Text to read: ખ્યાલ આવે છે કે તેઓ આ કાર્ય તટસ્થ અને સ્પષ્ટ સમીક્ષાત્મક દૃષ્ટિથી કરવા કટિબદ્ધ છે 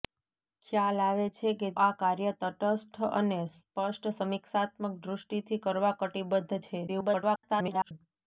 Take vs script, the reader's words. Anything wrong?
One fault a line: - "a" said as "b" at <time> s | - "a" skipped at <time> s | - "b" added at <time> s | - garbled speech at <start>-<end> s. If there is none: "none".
- "તેઓ" skipped at 1.7 s
- garbled speech at 6.9-7.9 s